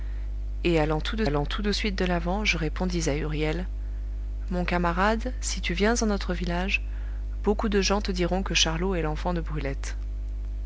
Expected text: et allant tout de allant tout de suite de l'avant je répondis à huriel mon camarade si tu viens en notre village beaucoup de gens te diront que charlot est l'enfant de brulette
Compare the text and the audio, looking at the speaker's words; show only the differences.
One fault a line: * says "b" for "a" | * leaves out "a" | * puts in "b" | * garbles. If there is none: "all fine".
all fine